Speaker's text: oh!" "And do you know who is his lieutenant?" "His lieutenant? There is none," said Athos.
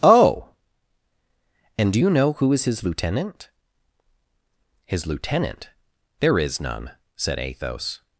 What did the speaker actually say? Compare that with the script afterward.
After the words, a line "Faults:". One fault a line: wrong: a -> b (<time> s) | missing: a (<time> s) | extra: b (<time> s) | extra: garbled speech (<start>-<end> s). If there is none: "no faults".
oh!" "And do you know who is his lieutenant?" "His lieutenant? There is none," said Athos.
Faults:
no faults